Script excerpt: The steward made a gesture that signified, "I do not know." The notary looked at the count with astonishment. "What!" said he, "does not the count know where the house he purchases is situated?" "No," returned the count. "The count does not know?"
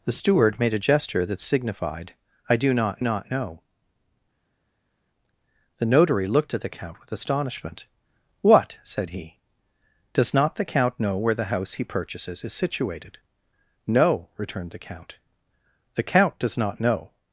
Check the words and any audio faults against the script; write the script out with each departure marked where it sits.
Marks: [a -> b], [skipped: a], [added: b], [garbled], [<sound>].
The steward made a gesture that signified, "I do not [added: not] know." The notary looked at the count with astonishment. "What!" said he, "does not the count know where the house he purchases is situated?" "No," returned the count. "The count does not know?"